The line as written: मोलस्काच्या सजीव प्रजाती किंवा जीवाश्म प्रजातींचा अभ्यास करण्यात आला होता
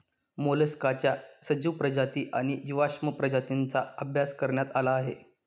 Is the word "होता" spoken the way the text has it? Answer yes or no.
no